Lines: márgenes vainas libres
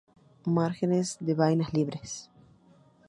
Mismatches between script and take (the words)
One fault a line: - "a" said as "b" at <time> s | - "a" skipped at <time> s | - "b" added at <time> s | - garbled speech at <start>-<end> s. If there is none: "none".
- "de" added at 1.2 s